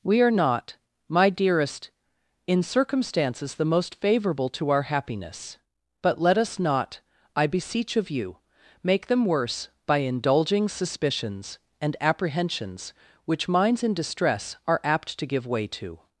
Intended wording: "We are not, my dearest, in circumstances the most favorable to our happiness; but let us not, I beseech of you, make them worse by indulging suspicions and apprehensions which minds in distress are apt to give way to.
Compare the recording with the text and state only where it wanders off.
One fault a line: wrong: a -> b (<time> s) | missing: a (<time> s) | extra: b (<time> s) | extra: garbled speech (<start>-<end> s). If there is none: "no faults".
no faults